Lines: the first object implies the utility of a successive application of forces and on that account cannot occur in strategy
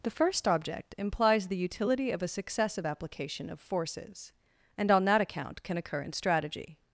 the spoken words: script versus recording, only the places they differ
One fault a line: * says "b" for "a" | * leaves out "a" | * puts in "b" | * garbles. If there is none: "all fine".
* says "can" for "cannot"